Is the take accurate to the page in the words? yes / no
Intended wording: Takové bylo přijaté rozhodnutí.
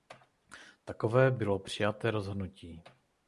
yes